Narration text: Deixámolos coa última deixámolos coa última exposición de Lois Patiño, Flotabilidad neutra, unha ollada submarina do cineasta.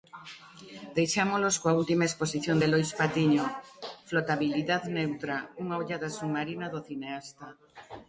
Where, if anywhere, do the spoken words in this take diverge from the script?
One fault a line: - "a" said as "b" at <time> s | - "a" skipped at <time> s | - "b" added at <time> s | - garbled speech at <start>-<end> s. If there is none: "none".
- "deixámolos coa última" skipped at 2.1 s